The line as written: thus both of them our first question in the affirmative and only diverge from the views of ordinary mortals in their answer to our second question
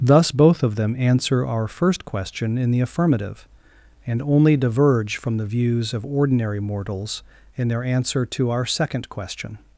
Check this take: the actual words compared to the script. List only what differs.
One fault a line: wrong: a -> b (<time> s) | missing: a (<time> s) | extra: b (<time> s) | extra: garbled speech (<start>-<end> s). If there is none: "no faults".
extra: answer (1.0 s)